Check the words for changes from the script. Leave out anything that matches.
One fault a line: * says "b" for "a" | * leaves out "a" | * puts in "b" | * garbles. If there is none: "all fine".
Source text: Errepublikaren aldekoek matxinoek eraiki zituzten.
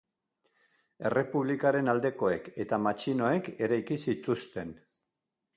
* puts in "eta"